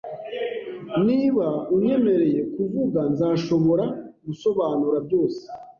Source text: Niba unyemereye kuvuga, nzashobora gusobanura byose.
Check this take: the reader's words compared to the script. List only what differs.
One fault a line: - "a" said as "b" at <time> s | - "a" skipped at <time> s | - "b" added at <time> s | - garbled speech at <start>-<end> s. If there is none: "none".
none